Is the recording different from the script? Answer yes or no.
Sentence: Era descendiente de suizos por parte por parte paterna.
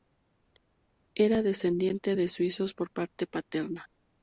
yes